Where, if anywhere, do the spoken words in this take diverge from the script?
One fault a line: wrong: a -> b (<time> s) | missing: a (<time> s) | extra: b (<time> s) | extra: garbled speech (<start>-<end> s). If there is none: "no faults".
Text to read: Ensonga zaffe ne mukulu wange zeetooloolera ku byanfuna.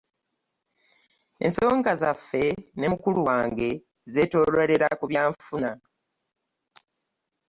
no faults